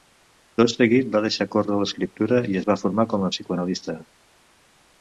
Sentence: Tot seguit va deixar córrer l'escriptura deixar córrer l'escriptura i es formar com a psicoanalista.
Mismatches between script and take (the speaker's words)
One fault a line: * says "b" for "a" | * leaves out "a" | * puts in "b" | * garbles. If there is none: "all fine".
* leaves out "deixar córrer l'escriptura"
* puts in "va"